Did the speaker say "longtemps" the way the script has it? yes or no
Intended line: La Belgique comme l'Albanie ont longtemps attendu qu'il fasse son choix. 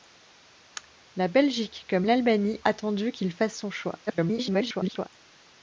no